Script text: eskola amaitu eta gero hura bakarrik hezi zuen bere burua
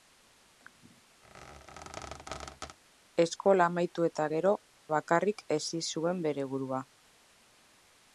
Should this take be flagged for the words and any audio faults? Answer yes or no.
yes